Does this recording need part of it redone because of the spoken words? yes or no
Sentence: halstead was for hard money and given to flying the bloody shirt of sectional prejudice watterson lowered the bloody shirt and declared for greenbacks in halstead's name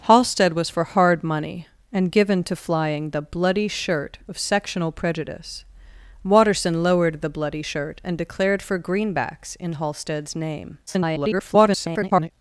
yes